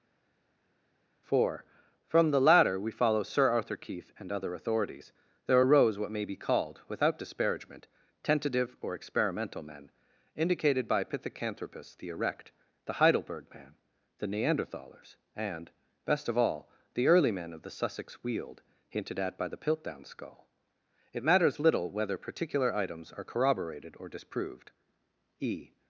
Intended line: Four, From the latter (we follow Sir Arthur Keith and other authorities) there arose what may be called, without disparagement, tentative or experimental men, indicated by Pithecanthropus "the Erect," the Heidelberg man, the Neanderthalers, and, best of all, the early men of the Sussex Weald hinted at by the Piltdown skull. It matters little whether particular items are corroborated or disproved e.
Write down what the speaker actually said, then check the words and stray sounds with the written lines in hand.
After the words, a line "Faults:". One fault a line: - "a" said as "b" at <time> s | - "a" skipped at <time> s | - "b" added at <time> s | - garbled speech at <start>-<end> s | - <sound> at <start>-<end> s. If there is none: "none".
Four, From the latter (we follow Sir Arthur Keith and other authorities) there arose what may be called, without disparagement, tentative or experimental men, indicated by Pithecanthropus "the Erect," the Heidelberg man, the Neanderthalers, and, best of all, the early men of the Sussex Weald hinted at by the Piltdown skull. It matters little whether particular items are corroborated or disproved e.
Faults:
none